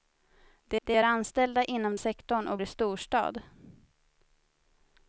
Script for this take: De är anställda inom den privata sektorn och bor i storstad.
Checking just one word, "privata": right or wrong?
wrong